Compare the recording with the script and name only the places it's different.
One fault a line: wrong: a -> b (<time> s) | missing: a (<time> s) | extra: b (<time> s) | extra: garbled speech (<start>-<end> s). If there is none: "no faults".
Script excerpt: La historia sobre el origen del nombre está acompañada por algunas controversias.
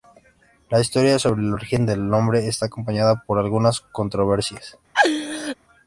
no faults